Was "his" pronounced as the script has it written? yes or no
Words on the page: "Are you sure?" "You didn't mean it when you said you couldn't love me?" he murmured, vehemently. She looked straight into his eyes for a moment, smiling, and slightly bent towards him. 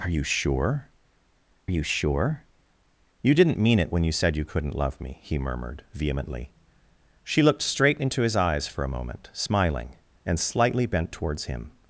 yes